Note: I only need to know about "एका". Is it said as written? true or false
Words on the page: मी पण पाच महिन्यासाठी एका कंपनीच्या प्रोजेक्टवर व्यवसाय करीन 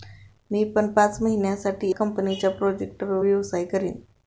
false